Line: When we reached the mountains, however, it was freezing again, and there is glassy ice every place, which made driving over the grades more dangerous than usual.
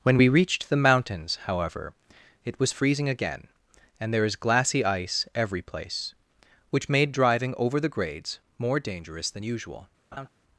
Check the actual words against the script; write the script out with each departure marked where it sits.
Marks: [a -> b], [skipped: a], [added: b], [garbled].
When we reached the mountains, however, it was freezing again, and there is glassy ice every place, which made driving over the grades more dangerous than usual.